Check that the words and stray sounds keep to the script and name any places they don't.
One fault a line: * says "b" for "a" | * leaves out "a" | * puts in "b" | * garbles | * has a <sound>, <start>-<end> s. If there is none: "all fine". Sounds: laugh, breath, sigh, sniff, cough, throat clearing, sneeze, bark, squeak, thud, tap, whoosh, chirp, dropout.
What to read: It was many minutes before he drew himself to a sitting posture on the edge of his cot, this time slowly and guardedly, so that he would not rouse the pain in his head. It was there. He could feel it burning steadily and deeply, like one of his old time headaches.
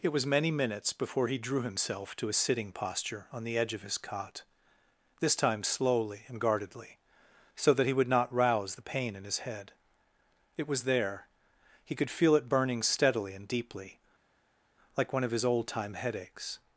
all fine